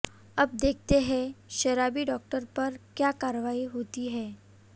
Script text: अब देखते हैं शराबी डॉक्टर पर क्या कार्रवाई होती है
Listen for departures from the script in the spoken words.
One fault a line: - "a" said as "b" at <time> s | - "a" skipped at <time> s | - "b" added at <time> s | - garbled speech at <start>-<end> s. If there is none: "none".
none